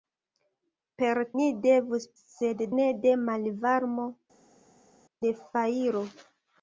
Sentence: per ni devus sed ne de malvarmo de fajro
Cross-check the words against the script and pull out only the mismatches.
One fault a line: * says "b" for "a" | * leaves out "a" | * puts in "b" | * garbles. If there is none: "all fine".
all fine